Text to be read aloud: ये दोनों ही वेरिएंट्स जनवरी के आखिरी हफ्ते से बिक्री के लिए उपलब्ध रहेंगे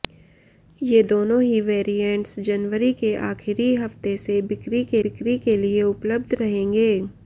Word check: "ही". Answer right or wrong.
right